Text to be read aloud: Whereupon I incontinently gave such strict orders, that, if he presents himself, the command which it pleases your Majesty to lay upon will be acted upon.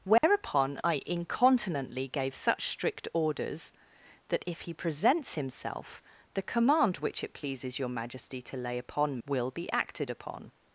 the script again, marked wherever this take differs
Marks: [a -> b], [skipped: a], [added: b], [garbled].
Whereupon I incontinently gave such strict orders, that, if he presents himself, the command which it pleases your Majesty to lay upon will be acted upon.